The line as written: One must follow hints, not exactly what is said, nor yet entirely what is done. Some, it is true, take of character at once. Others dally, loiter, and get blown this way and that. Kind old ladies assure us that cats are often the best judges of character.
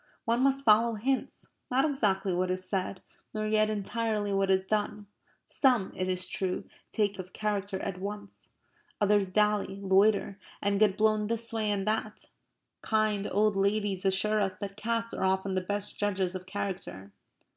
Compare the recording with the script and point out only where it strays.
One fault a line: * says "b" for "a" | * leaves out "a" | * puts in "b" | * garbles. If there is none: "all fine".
all fine